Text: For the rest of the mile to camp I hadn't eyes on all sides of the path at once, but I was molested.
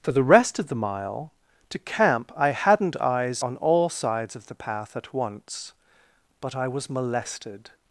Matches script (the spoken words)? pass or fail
pass